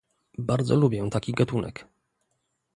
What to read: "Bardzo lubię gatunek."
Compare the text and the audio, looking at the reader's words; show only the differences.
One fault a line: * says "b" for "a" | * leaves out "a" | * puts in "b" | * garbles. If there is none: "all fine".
* puts in "taki"